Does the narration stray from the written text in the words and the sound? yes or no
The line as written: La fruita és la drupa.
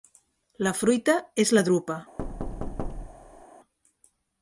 yes